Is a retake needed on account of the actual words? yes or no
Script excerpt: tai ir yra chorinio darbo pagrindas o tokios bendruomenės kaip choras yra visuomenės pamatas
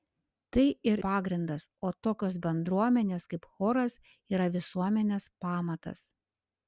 yes